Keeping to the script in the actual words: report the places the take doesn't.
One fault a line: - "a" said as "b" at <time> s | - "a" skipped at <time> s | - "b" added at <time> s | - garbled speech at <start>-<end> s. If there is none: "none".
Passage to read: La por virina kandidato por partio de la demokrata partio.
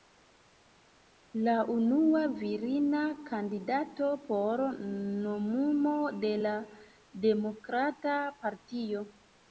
- "por" said as "unua" at 1.7 s
- "partio" said as "nomumo" at 4.9 s